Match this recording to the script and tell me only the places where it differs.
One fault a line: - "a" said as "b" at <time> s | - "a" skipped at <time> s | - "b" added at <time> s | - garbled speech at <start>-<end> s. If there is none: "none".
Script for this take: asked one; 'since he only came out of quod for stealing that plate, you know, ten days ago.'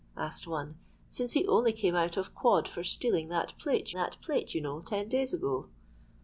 - "that plate" added at 3.9 s